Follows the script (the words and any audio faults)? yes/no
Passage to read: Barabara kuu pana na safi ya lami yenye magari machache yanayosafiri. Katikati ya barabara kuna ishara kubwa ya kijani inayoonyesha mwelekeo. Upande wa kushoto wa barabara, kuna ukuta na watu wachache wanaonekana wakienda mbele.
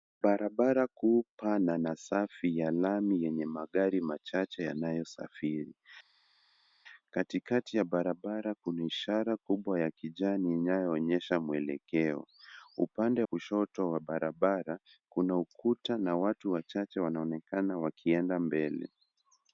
no